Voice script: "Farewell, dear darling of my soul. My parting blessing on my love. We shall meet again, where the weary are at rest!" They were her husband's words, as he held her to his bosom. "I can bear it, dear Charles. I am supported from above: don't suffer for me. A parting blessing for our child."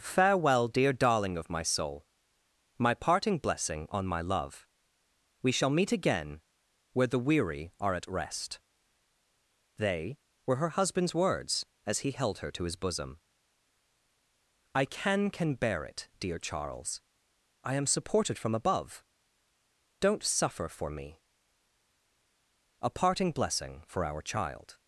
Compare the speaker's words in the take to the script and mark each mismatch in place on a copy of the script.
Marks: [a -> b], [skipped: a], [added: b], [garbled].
"Farewell, dear darling of my soul. My parting blessing on my love. We shall meet again, where the weary are at rest!" They were her husband's words, as he held her to his bosom. "I can [added: can] bear it, dear Charles. I am supported from above: don't suffer for me. A parting blessing for our child."